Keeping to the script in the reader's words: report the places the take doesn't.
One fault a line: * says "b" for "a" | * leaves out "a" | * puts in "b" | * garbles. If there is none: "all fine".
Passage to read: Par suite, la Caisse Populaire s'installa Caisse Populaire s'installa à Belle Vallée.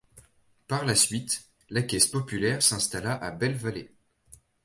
* puts in "la"
* leaves out "Caisse Populaire s'installa"